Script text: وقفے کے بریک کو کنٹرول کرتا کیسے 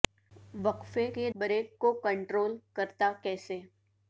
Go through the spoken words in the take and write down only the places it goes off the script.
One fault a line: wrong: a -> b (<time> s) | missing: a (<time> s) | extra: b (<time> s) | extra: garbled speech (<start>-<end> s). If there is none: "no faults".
no faults